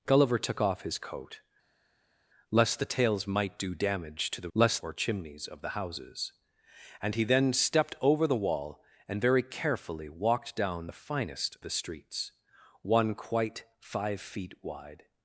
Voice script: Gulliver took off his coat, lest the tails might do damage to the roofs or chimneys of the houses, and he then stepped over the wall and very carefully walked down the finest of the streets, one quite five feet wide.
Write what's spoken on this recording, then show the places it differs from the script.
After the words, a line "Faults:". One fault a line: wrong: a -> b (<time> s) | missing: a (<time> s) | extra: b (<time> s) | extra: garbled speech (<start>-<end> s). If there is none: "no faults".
Gulliver took off his coat, lest the tails might do damage to the lest or chimneys of the houses, and he then stepped over the wall and very carefully walked down the finest the streets, one quite five feet wide.
Faults:
wrong: roofs -> lest (4.5 s)
missing: of (11.6 s)